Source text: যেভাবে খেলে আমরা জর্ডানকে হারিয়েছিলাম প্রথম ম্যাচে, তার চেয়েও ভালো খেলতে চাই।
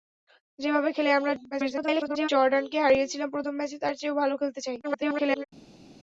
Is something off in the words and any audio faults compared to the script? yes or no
yes